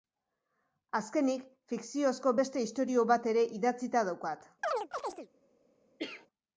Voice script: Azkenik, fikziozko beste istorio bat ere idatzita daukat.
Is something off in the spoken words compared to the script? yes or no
no